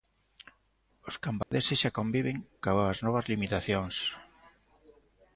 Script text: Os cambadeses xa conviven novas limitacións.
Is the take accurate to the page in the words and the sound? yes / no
no